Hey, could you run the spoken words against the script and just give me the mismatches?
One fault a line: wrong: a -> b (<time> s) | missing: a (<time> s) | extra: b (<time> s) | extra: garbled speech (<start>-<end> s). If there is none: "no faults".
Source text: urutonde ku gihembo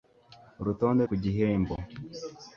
no faults